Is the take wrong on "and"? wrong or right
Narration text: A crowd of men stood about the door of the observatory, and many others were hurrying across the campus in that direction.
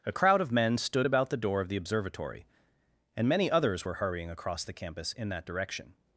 right